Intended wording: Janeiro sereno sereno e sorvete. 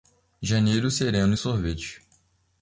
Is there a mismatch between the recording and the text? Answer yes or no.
yes